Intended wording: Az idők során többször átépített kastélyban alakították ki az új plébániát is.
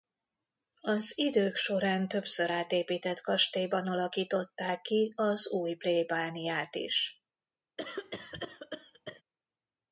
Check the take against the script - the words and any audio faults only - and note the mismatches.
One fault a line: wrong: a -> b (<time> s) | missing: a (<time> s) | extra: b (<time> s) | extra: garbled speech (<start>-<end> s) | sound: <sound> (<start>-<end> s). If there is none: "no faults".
sound: cough (7.8-9.2 s)